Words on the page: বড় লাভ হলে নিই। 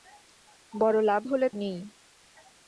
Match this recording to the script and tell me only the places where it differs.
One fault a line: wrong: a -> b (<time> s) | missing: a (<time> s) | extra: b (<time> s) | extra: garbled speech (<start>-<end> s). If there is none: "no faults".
no faults